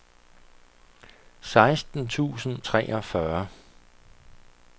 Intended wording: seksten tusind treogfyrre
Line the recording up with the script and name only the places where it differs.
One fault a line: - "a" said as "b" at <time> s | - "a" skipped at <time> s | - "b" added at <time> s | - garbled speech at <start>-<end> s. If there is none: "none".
none